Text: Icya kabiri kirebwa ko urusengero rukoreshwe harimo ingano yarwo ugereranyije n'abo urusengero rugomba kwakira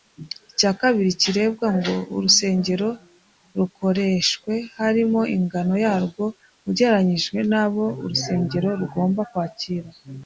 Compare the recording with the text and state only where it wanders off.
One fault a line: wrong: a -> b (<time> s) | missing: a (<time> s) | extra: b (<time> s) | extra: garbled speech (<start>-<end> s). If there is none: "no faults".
wrong: ko -> ngo (1.8 s)